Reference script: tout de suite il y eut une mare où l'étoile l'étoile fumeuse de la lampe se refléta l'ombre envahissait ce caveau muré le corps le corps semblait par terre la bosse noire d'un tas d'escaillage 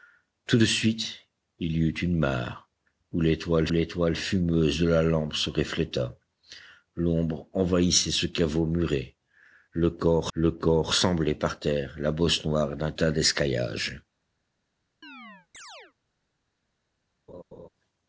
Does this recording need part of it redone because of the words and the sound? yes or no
yes